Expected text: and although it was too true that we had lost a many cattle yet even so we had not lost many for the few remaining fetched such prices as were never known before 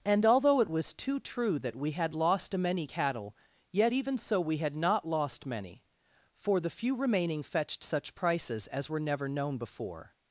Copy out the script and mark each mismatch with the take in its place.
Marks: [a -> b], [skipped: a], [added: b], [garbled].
and although it was too true that we had lost a many cattle yet even so we had not lost many for the few remaining fetched such prices as were never known before